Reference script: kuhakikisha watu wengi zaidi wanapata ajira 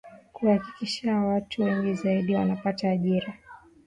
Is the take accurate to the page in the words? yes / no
yes